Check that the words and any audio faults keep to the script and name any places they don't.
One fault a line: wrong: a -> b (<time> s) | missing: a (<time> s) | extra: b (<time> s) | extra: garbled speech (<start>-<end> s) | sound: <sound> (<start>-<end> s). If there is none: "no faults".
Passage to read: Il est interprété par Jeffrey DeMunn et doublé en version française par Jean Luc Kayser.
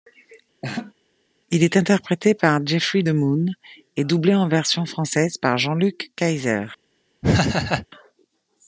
sound: laugh (0.6-0.9 s)
sound: laugh (7.2-7.9 s)